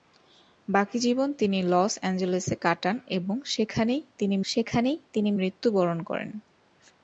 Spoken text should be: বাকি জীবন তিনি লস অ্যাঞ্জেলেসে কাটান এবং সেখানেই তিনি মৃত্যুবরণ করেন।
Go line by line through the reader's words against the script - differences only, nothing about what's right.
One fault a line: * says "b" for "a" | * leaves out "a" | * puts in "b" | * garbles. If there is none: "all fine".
* puts in "সেখানেই তিনি"